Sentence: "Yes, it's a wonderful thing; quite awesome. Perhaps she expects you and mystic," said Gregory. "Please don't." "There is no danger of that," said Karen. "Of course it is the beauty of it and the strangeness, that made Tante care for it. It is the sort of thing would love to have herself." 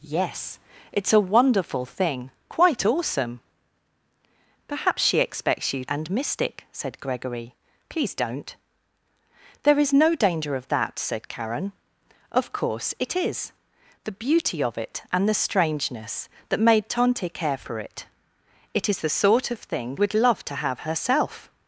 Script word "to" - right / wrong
right